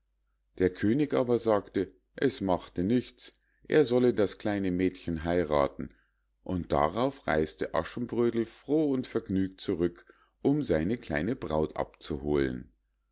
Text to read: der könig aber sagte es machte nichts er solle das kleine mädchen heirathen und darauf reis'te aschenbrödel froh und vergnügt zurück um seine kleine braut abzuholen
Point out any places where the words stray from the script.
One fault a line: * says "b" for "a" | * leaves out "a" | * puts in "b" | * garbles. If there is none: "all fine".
all fine